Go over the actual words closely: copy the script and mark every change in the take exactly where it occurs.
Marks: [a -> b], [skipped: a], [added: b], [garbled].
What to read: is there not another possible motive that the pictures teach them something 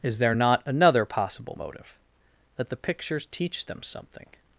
is there not another possible motive that the pictures teach them something